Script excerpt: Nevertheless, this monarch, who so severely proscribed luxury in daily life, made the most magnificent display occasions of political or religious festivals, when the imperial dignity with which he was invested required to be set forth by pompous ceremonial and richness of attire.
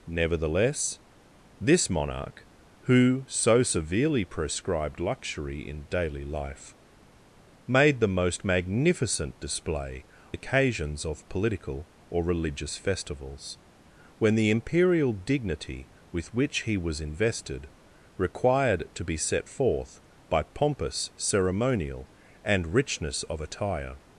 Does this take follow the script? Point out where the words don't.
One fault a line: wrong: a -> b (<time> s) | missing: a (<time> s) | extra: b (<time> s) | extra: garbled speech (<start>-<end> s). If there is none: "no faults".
no faults